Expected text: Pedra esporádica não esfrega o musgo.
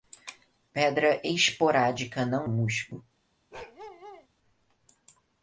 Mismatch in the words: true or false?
true